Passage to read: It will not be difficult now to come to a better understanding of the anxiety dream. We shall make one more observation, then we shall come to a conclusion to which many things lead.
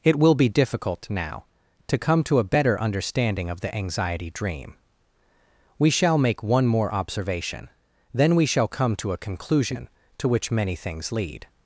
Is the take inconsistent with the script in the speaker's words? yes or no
yes